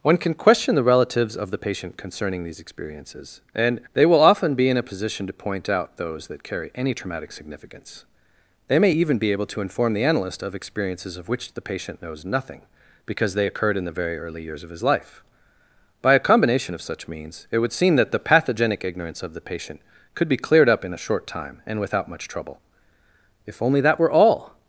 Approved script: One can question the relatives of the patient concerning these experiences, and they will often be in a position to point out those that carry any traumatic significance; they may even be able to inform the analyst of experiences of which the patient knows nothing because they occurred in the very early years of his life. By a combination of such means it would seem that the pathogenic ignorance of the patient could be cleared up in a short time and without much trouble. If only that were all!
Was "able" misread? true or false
false